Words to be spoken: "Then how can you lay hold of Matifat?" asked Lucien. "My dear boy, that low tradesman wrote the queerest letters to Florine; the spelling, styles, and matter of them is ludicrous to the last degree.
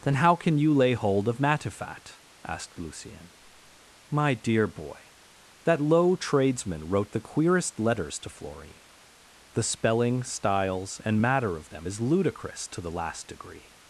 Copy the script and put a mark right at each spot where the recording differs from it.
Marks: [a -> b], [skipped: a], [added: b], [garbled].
"Then how can you lay hold of Matifat?" asked Lucien. "My dear boy, that low tradesman wrote the queerest letters to Florine; the spelling, styles, and matter of them is ludicrous to the last degree.